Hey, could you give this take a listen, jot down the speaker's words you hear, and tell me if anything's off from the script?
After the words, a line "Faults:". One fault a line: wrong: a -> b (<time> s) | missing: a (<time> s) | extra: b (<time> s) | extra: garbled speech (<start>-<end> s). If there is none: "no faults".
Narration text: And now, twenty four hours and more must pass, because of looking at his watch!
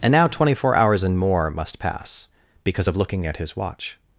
And now, twenty four hours and more must pass, because of looking at his watch!
Faults:
no faults